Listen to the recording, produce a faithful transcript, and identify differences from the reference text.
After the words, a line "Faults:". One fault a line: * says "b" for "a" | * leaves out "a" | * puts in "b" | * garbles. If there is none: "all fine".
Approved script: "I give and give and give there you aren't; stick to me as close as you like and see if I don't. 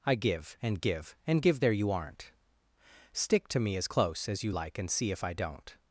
"I give and give and give there you aren't; stick to me as close as you like and see if I don't.
Faults:
all fine